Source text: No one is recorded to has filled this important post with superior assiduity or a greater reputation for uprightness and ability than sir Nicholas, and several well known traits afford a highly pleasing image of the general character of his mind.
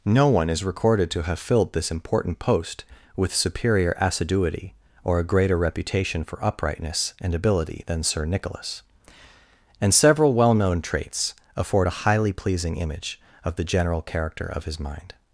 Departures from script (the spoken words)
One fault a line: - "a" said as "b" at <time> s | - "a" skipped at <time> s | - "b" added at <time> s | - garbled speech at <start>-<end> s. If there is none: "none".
- "has" said as "have" at 1.2 s